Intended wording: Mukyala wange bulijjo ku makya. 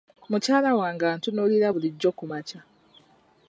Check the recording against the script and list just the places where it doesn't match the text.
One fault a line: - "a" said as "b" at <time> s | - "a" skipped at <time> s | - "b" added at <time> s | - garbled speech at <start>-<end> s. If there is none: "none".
- "antunuulira" added at 1.1 s